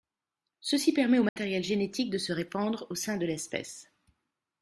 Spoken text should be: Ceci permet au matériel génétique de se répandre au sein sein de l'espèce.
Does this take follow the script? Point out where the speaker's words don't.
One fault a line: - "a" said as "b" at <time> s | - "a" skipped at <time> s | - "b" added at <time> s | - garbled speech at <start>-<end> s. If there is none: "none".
- "sein" skipped at 3.2 s